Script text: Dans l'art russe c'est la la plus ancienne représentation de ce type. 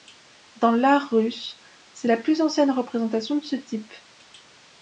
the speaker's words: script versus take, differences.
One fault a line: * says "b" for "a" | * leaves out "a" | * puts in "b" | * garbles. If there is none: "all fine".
* leaves out "la"